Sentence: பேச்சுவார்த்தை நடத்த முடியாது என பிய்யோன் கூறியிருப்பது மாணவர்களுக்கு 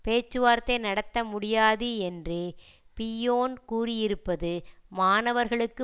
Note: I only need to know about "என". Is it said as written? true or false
false